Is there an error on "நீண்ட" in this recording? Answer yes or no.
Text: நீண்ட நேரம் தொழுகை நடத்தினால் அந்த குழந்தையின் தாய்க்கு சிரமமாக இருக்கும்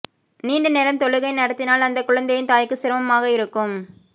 no